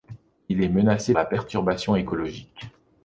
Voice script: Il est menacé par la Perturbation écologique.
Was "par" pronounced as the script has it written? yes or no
no